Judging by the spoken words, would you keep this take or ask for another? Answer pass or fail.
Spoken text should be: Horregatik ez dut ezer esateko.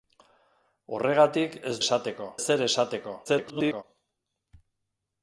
fail